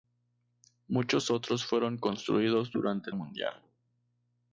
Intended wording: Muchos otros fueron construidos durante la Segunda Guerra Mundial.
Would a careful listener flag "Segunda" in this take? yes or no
yes